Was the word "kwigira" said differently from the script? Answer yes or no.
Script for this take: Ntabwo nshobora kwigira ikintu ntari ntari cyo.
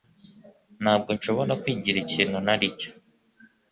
no